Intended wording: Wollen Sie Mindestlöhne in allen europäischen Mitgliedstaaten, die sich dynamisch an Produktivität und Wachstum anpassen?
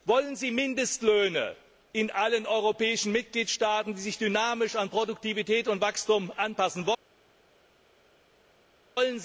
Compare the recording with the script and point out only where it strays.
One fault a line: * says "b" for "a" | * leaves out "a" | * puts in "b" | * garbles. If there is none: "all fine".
all fine